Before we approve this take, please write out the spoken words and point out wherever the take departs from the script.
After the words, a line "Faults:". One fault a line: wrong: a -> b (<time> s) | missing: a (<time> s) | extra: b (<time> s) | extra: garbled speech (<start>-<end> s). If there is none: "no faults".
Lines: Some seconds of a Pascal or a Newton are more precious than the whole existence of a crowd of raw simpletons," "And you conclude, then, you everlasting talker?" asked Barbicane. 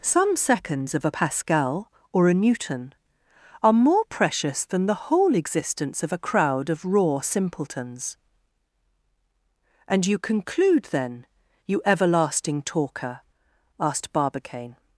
Some seconds of a Pascal or a Newton are more precious than the whole existence of a crowd of raw simpletons," "And you conclude, then, you everlasting talker?" asked Barbicane.
Faults:
no faults